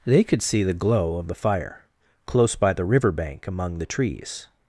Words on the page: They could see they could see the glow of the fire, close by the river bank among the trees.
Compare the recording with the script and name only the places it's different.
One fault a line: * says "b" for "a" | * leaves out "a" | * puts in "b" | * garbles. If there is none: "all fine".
* leaves out "they could see"